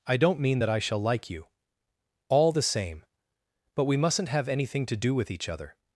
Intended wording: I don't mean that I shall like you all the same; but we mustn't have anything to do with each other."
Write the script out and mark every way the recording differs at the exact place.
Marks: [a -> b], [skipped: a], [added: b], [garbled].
I don't mean that I shall like you all the same; but we mustn't have anything to do with each other."